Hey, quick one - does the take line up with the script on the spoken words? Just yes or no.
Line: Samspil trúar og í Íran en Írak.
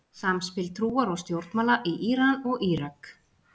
no